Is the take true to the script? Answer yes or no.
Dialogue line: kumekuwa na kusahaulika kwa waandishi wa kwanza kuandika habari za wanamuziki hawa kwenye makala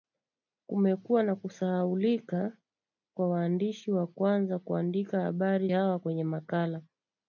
no